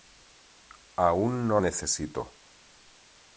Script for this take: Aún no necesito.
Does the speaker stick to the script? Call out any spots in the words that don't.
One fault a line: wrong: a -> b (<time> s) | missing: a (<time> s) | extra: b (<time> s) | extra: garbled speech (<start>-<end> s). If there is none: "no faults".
no faults